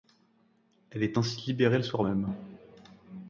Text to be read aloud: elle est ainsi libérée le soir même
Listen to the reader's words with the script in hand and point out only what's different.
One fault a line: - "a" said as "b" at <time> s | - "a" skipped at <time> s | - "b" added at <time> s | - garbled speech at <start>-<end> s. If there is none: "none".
none